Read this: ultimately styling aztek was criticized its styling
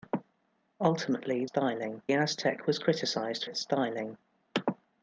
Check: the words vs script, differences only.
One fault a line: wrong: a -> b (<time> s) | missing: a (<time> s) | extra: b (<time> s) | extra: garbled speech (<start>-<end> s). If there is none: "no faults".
no faults